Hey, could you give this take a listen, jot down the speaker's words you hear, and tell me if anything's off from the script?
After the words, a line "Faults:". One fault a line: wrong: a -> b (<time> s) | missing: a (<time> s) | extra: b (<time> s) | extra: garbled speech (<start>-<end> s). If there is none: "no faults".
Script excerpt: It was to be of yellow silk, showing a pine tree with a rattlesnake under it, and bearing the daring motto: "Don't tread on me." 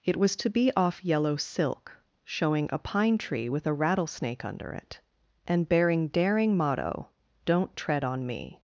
It was to be off yellow silk, showing a pine tree with a rattlesnake under it, and bearing daring motto: "Don't tread on me."
Faults:
wrong: of -> off (0.8 s)
missing: the (6.1 s)